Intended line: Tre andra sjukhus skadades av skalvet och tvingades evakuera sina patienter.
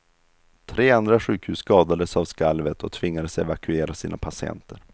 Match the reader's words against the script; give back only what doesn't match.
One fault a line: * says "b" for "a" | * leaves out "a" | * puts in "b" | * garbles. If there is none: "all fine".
all fine